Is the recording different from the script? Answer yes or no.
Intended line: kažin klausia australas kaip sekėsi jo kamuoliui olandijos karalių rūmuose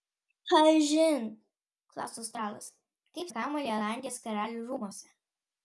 yes